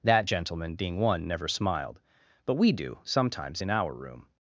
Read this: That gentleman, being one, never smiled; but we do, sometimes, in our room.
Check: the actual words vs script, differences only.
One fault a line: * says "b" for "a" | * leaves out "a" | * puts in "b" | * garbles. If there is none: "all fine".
all fine